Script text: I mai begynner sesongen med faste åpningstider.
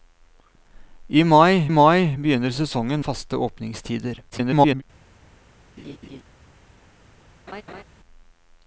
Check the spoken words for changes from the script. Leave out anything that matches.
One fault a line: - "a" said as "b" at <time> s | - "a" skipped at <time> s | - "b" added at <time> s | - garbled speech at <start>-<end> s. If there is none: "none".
- "mai" added at 1.7 s
- "med" skipped at 3.0 s
- garbled speech at 4.3-4.8 s